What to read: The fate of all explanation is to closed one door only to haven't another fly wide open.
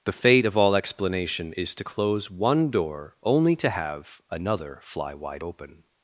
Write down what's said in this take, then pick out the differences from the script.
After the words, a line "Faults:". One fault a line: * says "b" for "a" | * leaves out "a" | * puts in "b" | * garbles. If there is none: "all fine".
The fate of all explanation is to close one door only to have another fly wide open.
Faults:
* says "close" for "closed"
* says "have" for "haven't"